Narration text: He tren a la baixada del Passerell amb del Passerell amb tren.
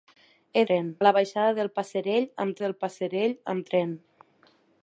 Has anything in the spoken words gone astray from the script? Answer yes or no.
no